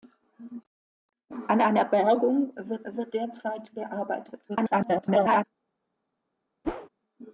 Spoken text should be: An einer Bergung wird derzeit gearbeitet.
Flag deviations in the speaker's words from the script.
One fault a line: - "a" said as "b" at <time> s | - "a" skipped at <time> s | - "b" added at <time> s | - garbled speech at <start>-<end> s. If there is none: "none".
- "wird" added at 2.8 s
- garbled speech at 4.5-5.4 s